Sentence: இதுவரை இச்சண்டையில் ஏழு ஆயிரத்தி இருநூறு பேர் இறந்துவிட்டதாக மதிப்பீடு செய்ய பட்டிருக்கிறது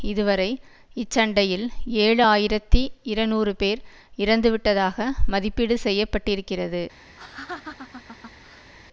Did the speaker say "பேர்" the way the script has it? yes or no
yes